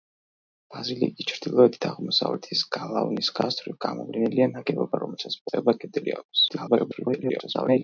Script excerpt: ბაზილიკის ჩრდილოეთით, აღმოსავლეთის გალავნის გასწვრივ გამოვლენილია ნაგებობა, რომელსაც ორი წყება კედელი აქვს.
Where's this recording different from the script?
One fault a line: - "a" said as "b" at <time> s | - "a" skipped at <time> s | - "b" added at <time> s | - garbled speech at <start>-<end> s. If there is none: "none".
- "ორი" skipped at 5.4 s
- garbled speech at 6.5-7.8 s